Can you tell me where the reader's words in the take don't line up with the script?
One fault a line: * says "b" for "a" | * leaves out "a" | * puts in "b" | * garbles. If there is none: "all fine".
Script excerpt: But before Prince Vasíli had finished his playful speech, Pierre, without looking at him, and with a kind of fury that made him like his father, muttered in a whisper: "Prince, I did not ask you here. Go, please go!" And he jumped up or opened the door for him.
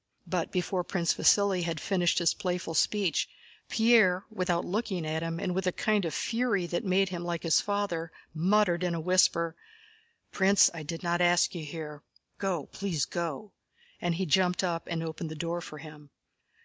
* says "and" for "or"